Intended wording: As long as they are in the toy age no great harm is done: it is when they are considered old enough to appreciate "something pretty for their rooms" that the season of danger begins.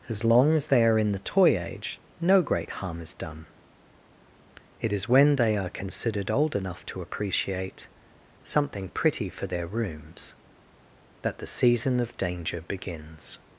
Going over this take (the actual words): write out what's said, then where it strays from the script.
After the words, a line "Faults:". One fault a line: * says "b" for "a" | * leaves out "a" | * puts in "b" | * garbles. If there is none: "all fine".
As long as they are in the toy age no great harm is done: it is when they are considered old enough to appreciate "something pretty for their rooms" that the season of danger begins.
Faults:
all fine